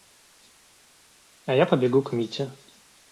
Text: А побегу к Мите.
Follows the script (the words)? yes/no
no